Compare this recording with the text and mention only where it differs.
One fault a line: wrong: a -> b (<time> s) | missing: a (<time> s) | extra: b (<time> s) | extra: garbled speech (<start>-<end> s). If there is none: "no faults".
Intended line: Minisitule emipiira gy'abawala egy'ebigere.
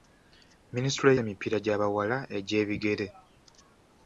no faults